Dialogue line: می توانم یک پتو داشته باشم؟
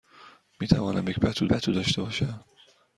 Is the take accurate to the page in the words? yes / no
no